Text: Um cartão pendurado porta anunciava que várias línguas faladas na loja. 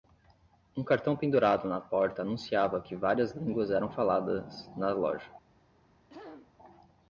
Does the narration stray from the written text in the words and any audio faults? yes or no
yes